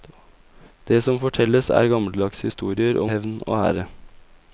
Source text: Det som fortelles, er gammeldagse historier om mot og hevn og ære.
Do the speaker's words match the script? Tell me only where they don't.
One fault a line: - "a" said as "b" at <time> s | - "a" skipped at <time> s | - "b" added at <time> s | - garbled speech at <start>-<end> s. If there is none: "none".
- "mot og" skipped at 3.1 s